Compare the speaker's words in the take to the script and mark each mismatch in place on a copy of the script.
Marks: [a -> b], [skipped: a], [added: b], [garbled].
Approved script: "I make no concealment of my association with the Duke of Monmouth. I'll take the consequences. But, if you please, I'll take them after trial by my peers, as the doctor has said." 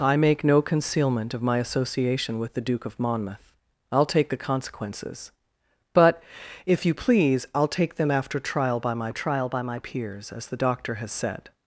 "I make no concealment of my association with the Duke of Monmouth. I'll take the consequences. But, if you please, I'll take them after trial by my [added: trial by my] peers, as the doctor has said."